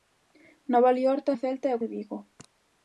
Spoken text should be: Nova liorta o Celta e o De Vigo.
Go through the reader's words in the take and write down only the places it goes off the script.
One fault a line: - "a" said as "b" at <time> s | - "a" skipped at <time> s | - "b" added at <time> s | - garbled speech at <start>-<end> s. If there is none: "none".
none